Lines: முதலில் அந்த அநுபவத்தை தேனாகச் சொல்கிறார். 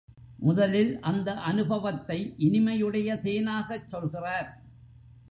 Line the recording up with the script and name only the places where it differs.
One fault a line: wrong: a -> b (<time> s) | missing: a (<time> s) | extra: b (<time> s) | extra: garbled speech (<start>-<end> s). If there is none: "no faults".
extra: இனிமையுடைய (2.4 s)